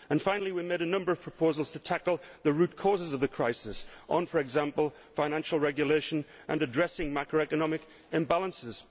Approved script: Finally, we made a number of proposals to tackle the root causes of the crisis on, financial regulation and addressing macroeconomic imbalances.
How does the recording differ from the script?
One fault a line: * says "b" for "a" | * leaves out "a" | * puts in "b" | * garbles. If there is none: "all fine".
* puts in "for example"